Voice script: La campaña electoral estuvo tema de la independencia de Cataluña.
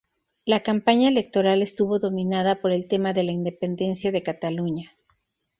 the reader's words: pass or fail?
fail